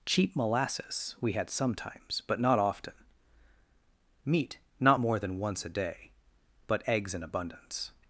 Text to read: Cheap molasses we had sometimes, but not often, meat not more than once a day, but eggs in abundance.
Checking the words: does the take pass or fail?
pass